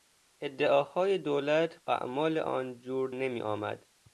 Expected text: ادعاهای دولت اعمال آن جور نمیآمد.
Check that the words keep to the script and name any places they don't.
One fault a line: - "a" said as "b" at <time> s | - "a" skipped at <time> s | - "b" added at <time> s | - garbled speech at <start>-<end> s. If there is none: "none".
none